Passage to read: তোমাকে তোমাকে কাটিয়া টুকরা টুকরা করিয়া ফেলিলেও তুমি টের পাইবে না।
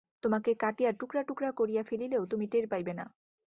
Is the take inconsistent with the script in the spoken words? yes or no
yes